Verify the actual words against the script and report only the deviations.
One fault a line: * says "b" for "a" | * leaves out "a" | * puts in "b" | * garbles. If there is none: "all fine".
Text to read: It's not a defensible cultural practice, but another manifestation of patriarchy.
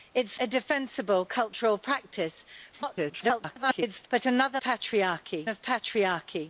* leaves out "not"
* garbles
* says "patriarchy" for "manifestation"